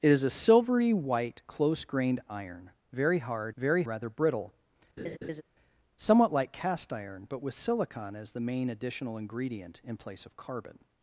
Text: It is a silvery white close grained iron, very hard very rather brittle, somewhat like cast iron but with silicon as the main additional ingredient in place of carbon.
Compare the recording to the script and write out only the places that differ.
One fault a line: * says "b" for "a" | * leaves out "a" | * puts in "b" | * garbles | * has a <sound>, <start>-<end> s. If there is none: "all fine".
* has a laugh, 5.0-5.4 s